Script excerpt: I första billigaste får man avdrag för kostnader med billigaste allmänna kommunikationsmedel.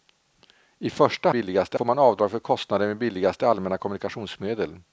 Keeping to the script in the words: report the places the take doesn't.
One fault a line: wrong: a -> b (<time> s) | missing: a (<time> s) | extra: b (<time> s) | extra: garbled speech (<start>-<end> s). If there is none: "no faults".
no faults